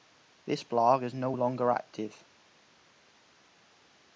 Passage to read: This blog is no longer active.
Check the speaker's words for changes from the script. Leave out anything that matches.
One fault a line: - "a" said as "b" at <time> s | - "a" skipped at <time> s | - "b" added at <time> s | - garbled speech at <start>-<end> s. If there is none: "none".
none